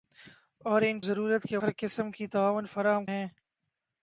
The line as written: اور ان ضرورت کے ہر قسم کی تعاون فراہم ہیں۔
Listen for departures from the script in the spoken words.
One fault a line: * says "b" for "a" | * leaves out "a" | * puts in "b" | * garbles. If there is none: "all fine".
all fine